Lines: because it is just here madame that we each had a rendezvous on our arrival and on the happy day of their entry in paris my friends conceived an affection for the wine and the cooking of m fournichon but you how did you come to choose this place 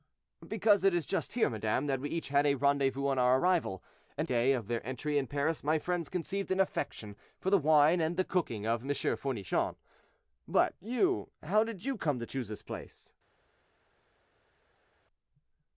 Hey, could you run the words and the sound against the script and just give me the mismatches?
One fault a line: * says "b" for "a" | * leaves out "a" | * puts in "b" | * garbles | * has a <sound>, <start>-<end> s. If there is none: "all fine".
* leaves out "on the happy"